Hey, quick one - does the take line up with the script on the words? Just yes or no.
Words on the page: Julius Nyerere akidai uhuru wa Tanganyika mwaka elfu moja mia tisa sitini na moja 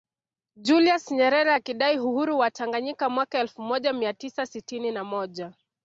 yes